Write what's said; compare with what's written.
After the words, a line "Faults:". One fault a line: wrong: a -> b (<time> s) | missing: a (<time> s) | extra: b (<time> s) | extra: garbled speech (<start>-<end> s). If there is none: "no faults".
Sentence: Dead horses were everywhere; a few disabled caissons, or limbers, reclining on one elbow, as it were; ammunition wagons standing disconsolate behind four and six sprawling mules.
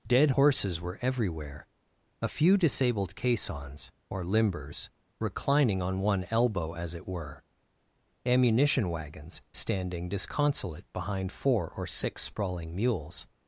Dead horses were everywhere; a few disabled caissons, or limbers, reclining on one elbow, as it were; ammunition wagons standing disconsolate behind four or six sprawling mules.
Faults:
wrong: and -> or (11.7 s)